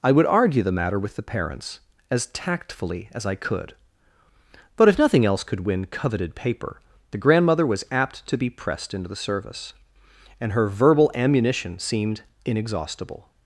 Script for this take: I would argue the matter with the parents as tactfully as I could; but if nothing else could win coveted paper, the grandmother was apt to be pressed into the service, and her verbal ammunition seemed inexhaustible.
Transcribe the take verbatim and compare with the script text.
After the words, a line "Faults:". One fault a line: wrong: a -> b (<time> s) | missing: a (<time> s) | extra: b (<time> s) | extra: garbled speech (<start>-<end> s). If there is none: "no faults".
I would argue the matter with the parents as tactfully as I could; but if nothing else could win coveted paper, the grandmother was apt to be pressed into the service, and her verbal ammunition seemed inexhaustible.
Faults:
no faults